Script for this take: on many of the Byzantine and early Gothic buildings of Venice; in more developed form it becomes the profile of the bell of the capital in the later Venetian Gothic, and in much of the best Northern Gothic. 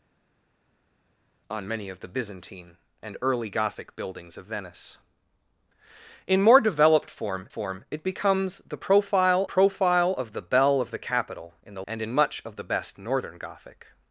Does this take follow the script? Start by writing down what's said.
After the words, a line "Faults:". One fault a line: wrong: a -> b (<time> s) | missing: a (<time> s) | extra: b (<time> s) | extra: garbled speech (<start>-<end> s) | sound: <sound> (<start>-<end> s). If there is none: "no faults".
on many of the Byzantine and early Gothic buildings of Venice; in more developed form form it becomes the profile profile of the bell of the capital in the and in much of the best Northern Gothic.
Faults:
extra: form (7.5 s)
extra: profile (9.4 s)
missing: later Venetian Gothic (11.8 s)